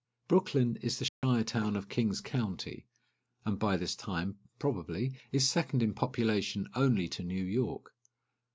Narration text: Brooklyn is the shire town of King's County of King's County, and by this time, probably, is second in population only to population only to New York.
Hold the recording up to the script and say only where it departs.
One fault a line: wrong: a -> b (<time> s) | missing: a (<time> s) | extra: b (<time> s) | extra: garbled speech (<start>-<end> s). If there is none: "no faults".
missing: of King's County (2.9 s)
missing: population only to (7.2 s)